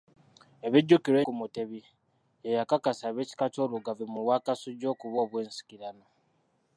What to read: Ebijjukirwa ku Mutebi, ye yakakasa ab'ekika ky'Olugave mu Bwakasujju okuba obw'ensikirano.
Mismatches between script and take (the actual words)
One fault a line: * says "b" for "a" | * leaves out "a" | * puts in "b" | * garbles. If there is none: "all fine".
all fine